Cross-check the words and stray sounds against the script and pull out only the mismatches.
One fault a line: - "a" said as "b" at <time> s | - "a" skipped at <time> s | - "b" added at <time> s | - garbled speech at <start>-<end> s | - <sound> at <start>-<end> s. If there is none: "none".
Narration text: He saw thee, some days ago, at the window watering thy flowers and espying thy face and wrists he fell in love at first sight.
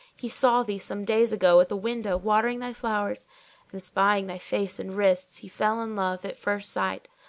none